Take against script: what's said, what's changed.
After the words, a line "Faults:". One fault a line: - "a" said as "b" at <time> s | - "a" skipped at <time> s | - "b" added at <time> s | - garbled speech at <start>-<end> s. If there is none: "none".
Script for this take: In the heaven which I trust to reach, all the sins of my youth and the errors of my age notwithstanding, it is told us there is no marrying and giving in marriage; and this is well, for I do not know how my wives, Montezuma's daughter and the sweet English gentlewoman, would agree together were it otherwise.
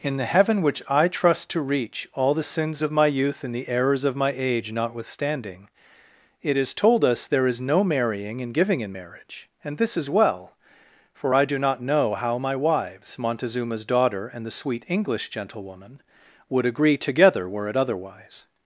In the heaven which I trust to reach, all the sins of my youth and the errors of my age notwithstanding, it is told us there is no marrying and giving in marriage; and this is well, for I do not know how my wives, Montezuma's daughter and the sweet English gentlewoman, would agree together were it otherwise.
Faults:
none